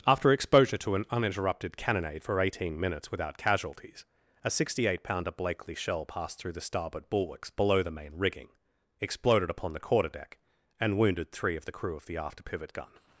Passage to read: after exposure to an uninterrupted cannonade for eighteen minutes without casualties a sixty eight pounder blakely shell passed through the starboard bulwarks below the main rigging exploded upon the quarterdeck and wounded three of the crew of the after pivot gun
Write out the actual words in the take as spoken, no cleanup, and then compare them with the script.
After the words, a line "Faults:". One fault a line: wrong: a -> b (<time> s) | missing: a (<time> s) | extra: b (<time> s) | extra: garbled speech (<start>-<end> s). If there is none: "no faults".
after exposure to an uninterrupted cannonade for eighteen minutes without casualties a sixty eight pounder blakely shell passed through the starboard bulwarks below the main rigging exploded upon the quarterdeck and wounded three of the crew of the after pivot gun
Faults:
no faults